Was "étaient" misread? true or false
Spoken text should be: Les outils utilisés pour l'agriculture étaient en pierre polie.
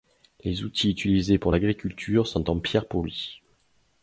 true